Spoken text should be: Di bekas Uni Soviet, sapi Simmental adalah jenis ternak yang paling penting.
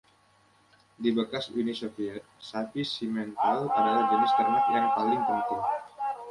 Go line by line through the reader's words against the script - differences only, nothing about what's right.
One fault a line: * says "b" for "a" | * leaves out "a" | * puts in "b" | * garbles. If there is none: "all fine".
all fine